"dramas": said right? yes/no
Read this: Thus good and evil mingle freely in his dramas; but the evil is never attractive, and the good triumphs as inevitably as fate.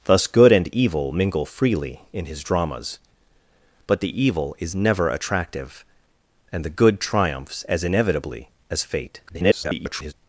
yes